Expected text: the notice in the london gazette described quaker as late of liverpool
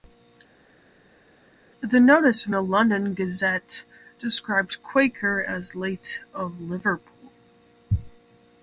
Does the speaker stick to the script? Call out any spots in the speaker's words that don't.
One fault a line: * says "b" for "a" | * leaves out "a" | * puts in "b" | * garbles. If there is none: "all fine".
all fine